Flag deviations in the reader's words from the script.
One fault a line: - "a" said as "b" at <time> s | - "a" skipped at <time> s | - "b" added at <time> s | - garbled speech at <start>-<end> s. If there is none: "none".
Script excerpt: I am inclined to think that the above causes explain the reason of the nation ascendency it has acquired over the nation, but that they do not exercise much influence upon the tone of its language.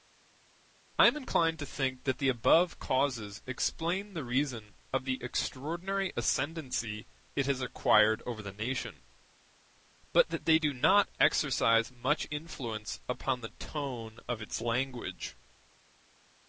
- "nation" said as "extraordinary" at 5.2 s